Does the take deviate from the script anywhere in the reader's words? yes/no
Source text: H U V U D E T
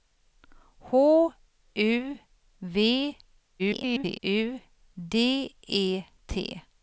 yes